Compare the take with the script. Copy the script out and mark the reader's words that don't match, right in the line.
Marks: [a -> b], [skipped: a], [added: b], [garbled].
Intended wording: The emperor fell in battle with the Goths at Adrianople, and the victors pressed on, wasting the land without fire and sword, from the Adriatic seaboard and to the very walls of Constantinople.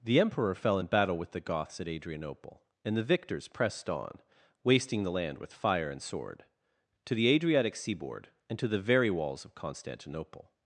The emperor fell in battle with the Goths at Adrianople, and the victors pressed on, wasting the land [without -> with] fire and sword, [from -> to] the Adriatic seaboard and to the very walls of Constantinople.